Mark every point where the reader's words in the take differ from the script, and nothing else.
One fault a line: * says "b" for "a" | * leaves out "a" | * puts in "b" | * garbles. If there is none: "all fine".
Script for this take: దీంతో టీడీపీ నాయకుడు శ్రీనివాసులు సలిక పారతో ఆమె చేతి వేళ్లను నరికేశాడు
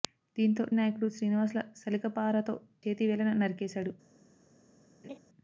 * leaves out "టీడీపీ"
* leaves out "ఆమె"